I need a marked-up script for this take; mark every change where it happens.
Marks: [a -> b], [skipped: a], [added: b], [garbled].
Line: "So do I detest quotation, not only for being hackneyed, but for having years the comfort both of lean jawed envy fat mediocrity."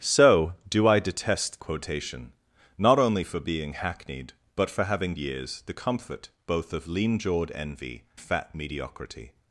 "So do I detest quotation, not only for being hackneyed, but for having years the comfort both of lean jawed envy fat mediocrity."